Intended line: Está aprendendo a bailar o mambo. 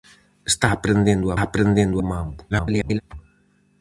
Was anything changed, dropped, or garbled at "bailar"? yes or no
yes